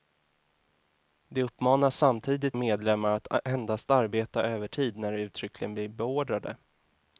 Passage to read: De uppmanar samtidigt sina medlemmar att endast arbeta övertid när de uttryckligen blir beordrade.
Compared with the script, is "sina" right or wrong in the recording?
wrong